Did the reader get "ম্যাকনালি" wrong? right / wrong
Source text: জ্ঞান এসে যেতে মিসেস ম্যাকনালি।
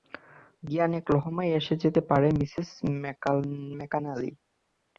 right